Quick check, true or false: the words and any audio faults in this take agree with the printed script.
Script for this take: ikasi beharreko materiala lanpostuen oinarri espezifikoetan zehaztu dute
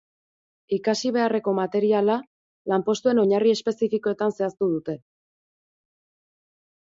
true